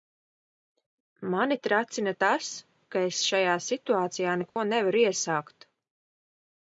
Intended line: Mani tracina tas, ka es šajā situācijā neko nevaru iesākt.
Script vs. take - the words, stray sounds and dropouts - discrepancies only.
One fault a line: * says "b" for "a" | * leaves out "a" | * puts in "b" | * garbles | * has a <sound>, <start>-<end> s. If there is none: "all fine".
* has a dropout, 4.5-4.6 s